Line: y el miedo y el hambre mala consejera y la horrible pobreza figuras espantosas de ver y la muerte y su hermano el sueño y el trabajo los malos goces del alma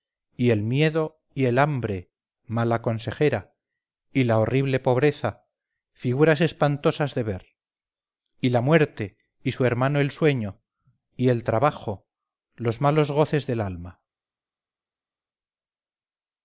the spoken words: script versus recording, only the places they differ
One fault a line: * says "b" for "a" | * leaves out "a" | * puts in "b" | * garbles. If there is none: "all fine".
all fine